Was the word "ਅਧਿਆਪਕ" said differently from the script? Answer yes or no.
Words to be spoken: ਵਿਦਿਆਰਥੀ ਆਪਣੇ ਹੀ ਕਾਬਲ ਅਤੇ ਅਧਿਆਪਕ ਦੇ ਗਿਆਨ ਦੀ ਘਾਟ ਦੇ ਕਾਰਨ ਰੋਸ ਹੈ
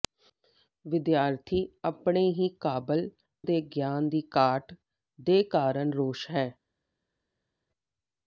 yes